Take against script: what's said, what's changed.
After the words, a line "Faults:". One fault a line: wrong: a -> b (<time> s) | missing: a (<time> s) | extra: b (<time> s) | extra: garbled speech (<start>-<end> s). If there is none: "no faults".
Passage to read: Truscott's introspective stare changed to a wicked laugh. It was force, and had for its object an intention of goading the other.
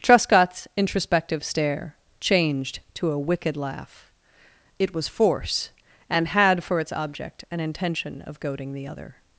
Truscott's introspective stare changed to a wicked laugh. It was force, and had for its object an intention of goading the other.
Faults:
no faults